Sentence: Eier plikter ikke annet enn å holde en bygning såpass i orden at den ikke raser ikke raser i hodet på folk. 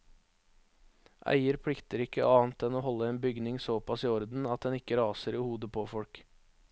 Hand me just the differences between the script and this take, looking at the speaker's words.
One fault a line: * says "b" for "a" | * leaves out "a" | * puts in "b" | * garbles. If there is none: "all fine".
* leaves out "ikke raser"